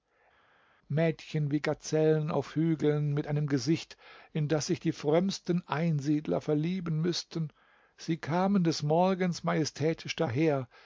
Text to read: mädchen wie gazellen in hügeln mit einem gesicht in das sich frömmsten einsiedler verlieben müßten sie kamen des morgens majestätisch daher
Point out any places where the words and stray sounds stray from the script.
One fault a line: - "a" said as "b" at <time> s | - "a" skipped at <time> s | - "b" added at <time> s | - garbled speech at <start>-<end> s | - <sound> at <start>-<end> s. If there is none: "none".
- "in" said as "auf" at 2.3 s
- "die" added at 4.8 s